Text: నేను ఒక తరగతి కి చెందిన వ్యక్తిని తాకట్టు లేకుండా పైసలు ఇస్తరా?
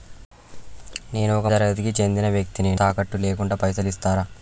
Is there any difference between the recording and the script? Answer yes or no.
no